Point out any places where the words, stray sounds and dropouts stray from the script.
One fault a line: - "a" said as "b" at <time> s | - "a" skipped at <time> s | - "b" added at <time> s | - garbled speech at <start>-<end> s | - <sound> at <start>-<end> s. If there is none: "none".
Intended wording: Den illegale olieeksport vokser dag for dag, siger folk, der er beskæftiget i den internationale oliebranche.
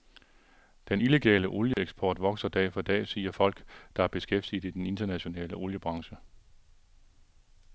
- dropout at 1.7-1.8 s